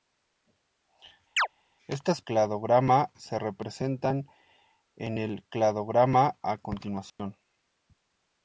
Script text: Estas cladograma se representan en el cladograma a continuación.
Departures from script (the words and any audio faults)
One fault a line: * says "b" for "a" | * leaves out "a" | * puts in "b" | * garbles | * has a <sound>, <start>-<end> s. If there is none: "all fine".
* has a chirp, 1.4-1.5 s
* has a dropout, 7.1-7.2 s